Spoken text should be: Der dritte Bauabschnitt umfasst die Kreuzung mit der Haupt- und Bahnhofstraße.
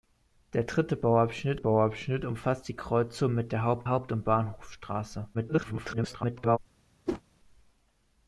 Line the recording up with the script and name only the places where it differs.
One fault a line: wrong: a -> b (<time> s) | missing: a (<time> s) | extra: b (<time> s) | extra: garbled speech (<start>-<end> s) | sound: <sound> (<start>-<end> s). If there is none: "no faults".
extra: Bauabschnitt (1.6 s)
extra: Haupt (3.9 s)
extra: garbled speech (5.3-6.6 s)
sound: whoosh (7.1-7.2 s)